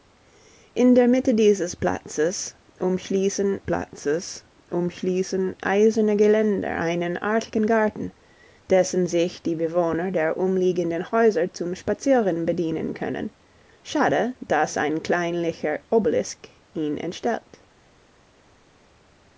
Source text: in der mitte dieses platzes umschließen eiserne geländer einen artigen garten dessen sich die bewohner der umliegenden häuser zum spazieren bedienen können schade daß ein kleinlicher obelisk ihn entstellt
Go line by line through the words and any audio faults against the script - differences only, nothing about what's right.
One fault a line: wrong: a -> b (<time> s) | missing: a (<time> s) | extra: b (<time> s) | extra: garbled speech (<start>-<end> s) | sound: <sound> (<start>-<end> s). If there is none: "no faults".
extra: platzes umschließen (3.6 s)